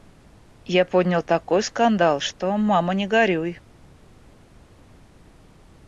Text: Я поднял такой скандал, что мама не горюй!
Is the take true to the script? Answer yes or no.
yes